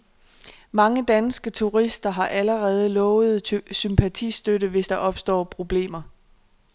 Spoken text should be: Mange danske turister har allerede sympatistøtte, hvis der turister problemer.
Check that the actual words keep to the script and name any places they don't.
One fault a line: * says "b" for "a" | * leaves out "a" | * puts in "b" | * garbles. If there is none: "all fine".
* puts in "lovet"
* says "opstår" for "turister"